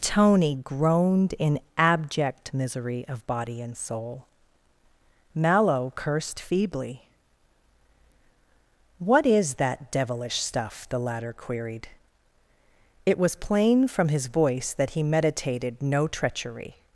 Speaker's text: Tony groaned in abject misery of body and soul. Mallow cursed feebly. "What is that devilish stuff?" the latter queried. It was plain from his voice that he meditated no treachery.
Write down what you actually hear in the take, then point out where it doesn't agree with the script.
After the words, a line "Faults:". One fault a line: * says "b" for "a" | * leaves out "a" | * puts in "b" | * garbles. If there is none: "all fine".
Tony groaned in abject misery of body and soul. Mallow cursed feebly. "What is that devilish stuff?" the latter queried. It was plain from his voice that he meditated no treachery.
Faults:
all fine